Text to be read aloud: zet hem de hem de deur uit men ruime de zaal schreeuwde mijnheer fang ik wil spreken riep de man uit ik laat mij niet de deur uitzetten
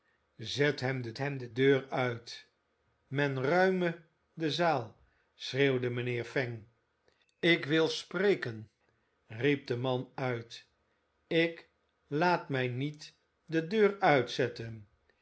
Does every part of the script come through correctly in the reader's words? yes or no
yes